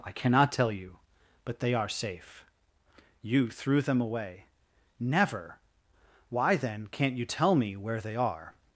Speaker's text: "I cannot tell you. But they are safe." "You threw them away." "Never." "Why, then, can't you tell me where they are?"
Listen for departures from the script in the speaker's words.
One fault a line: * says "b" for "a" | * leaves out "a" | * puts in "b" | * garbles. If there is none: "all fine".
all fine